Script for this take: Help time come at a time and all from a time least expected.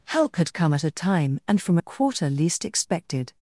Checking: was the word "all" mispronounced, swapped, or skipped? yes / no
yes